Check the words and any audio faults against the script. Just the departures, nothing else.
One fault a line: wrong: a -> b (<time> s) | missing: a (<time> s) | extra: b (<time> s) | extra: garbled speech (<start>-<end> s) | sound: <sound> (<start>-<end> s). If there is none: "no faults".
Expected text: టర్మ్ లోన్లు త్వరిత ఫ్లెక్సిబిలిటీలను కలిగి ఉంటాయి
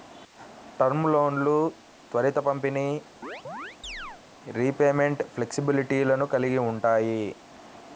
extra: పంపిణీ రీపేమెంట్ (2.5 s)
sound: chirp (3.2-4.2 s)